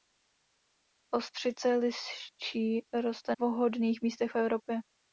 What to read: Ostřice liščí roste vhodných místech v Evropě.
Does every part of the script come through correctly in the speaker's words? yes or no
yes